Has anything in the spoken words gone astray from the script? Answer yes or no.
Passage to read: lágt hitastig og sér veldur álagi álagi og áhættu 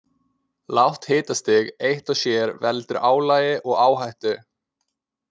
yes